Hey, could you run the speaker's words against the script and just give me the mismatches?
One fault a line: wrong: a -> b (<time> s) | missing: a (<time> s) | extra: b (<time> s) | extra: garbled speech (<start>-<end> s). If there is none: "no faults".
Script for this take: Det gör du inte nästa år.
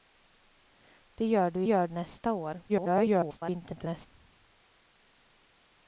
wrong: inte -> gör (1.6 s)
extra: garbled speech (2.7-4.1 s)